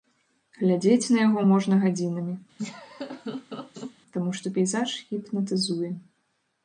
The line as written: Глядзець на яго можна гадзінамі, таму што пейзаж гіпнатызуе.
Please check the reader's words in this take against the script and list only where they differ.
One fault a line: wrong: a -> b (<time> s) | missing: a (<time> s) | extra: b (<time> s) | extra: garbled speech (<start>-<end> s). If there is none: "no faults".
no faults